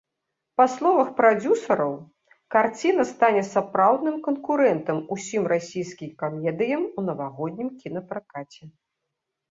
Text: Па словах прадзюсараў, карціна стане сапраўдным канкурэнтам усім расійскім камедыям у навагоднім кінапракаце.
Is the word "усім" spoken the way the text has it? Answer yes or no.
yes